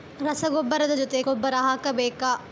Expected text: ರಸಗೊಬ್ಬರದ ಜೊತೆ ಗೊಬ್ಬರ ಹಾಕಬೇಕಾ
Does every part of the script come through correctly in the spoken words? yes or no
yes